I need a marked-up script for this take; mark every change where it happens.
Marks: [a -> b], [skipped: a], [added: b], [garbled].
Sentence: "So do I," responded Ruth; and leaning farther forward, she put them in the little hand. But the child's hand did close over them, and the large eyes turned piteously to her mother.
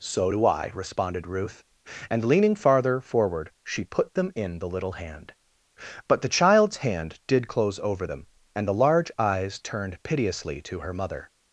"So do I," responded Ruth; and leaning farther forward, she put them in the little hand. But the child's hand did close over them, and the large eyes turned piteously to her mother.